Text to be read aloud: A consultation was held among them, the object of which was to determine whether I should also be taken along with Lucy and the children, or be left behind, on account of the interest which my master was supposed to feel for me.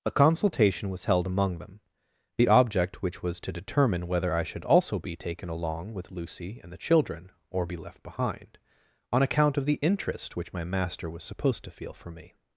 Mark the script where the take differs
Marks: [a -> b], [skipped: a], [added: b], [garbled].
A consultation was held among them, the object [skipped: of] which was to determine whether I should also be taken along with Lucy and the children, or be left behind, on account of the interest which my master was supposed to feel for me.